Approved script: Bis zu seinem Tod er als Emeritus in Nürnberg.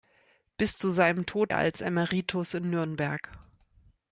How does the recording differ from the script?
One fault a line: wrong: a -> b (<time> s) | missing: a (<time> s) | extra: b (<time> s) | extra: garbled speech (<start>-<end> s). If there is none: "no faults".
no faults